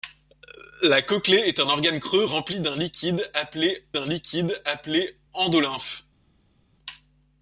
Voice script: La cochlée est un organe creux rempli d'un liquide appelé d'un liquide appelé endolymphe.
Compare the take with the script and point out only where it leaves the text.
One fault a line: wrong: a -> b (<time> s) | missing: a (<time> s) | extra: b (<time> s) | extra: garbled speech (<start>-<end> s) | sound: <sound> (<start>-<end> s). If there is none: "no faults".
no faults